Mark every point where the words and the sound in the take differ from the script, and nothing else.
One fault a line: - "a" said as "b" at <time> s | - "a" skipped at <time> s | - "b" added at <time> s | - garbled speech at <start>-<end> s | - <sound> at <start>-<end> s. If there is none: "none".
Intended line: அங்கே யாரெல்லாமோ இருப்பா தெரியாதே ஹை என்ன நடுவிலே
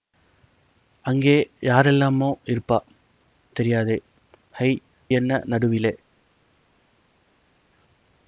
none